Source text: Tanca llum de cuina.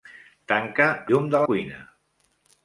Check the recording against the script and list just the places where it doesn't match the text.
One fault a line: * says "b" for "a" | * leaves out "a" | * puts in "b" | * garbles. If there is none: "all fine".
all fine